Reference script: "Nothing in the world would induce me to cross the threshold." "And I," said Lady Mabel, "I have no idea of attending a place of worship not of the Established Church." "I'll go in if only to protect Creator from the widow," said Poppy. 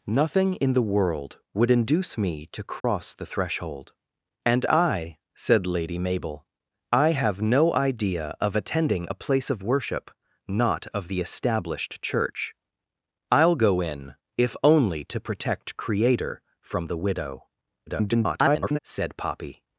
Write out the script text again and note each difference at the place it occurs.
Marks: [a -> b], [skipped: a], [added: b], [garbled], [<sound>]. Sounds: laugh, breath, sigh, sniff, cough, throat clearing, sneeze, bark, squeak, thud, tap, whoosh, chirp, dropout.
"Nothing in the world would induce me to cross [dropout] the threshold." "And I," said Lady Mabel, "I have no idea of attending a place of worship not of the Established Church." "I'll go in if only to protect Creator from the widow," [garbled] said Poppy.